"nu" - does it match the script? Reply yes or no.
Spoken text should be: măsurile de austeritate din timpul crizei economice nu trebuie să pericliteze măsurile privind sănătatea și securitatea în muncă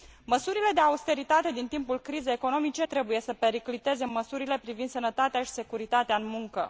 no